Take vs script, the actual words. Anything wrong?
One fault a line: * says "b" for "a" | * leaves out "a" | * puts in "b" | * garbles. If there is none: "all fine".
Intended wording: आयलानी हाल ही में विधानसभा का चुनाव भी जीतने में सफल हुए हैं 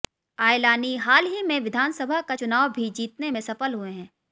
all fine